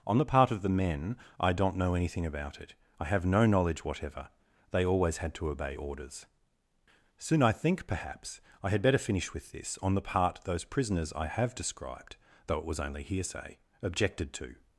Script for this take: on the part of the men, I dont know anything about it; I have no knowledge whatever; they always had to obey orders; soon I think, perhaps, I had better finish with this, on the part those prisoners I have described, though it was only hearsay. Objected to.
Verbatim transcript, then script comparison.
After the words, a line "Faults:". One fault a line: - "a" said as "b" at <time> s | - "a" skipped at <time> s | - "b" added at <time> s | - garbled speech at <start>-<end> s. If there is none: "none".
on the part of the men, I dont know anything about it; I have no knowledge whatever; they always had to obey orders; soon I think, perhaps, I had better finish with this, on the part those prisoners I have described, though it was only hearsay. Objected to.
Faults:
none